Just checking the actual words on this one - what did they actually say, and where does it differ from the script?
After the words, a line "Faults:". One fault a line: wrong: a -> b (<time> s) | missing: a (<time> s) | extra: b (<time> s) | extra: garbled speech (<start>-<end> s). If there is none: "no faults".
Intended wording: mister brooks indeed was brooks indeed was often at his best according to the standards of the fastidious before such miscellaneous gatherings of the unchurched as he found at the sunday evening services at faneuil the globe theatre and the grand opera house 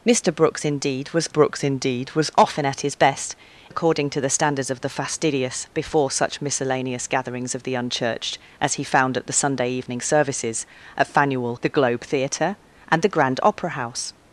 mister brooks indeed was brooks indeed was often at his best according to the standards of the fastidious before such miscellaneous gatherings of the unchurched as he found at the sunday evening services at faneuil the globe theatre and the grand opera house
Faults:
no faults